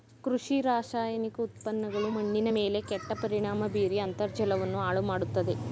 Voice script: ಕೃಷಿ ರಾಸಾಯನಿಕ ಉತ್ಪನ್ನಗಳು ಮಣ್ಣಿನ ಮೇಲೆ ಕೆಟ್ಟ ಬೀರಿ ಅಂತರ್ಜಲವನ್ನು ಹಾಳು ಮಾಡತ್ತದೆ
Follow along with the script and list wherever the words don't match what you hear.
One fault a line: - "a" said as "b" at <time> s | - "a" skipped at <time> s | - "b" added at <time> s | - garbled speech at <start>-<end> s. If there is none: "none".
- "ಪರಿಣಾಮ" added at 3.2 s